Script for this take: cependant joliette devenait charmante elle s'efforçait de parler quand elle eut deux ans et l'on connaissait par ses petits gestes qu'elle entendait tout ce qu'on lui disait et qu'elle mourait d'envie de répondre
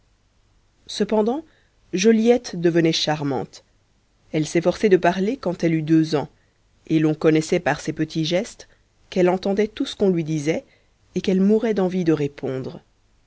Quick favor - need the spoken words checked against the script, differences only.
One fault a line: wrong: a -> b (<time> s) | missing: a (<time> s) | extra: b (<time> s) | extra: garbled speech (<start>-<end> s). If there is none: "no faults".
no faults